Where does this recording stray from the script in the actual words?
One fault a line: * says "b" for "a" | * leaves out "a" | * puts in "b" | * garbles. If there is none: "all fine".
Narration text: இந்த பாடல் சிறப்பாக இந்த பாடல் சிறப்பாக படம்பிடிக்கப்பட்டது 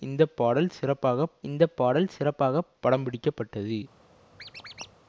all fine